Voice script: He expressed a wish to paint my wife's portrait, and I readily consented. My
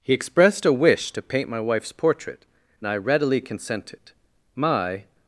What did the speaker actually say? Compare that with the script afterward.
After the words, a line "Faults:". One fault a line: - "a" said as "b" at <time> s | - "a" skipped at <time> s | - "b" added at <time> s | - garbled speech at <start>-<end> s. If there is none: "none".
He expressed a wish to paint my wife's portrait, and I readily consented. My
Faults:
none